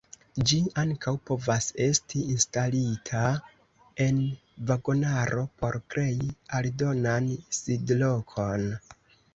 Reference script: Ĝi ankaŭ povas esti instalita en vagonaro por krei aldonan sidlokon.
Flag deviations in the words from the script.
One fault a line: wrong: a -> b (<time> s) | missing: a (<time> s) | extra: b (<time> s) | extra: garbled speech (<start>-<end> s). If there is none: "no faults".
no faults